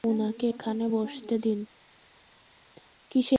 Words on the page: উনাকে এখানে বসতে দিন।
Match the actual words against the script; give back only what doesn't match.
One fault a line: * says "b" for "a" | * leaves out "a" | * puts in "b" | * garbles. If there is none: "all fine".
all fine